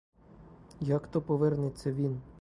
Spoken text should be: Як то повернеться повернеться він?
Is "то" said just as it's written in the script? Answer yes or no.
yes